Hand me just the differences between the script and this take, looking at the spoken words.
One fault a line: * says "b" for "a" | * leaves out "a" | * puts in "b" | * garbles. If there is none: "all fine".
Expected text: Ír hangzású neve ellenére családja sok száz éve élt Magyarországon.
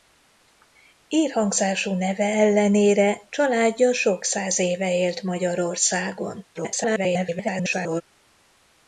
* garbles